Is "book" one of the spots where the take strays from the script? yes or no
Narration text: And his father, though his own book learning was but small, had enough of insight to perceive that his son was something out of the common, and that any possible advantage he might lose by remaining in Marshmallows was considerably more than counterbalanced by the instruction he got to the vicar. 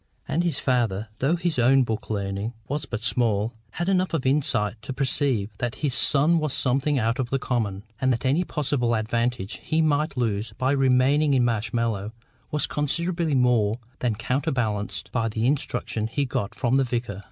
no